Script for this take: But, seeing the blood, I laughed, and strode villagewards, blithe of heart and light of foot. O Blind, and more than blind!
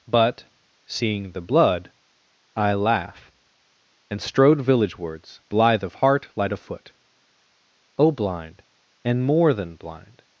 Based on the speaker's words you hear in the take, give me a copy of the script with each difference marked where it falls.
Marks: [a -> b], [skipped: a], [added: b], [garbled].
But, seeing the blood, I [laughed, -> laugh] and strode villagewards, blithe of heart [skipped: and] light of foot. O Blind, and more than blind!